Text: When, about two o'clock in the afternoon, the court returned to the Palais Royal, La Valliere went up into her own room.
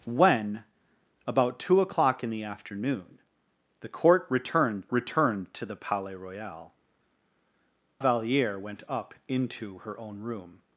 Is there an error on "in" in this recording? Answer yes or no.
no